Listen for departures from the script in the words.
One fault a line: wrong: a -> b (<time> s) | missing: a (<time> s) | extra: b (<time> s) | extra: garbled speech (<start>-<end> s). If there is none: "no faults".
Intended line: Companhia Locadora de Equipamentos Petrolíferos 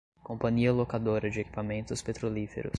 no faults